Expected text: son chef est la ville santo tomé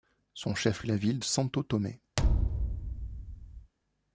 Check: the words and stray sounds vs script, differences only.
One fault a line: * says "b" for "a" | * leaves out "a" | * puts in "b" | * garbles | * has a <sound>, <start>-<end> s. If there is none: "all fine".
* has a thud, 2.2-3.7 s